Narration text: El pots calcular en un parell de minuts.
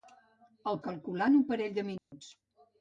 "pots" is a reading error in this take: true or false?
true